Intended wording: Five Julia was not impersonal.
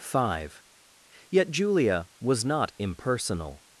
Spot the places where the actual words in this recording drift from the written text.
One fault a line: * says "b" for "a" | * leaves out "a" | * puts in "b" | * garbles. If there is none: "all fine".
* puts in "Yet"